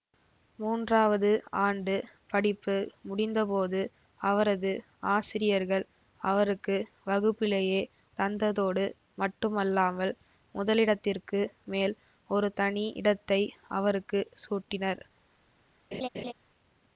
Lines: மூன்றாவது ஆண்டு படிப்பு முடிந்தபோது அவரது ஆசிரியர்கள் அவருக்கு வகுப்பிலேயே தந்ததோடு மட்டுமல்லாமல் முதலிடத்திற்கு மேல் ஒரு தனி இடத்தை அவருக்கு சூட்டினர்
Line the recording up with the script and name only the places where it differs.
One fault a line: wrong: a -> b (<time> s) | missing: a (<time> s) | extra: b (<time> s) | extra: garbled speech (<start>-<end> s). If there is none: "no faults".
no faults